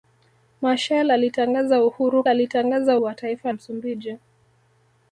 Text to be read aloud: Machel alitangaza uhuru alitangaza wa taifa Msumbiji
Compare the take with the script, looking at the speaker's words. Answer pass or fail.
pass